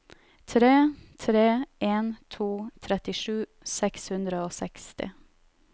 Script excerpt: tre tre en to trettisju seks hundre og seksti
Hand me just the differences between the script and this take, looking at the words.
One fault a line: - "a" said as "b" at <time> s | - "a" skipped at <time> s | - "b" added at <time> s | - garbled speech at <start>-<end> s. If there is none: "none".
none